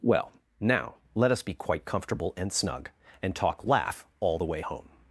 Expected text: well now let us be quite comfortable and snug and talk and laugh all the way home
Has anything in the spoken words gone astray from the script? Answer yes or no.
yes